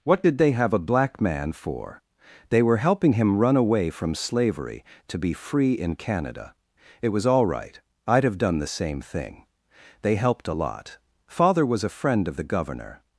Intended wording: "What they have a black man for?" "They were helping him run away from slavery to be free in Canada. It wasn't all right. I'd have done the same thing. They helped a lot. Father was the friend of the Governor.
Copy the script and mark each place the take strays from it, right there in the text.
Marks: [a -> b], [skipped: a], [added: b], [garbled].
"What [added: did] they have a black man for?" "They were helping him run away from slavery to be free in Canada. It [wasn't -> was] all right. I'd have done the same thing. They helped a lot. Father was [the -> a] friend of the Governor.